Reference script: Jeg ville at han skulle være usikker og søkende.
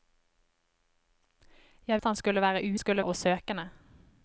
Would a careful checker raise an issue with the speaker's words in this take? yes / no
yes